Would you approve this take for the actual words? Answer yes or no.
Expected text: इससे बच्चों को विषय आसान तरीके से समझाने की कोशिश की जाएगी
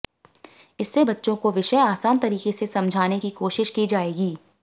yes